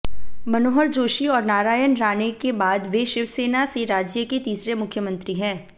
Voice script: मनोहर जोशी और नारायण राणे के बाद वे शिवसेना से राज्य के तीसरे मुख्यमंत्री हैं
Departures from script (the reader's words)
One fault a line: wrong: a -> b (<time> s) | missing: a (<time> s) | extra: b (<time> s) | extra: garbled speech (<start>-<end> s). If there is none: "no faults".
no faults